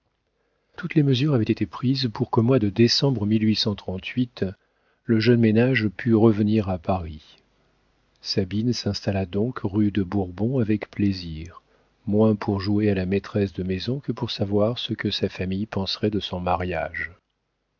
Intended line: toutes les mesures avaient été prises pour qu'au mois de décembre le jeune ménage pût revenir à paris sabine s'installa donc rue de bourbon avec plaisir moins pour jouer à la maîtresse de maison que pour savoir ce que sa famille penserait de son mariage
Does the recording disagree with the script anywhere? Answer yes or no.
no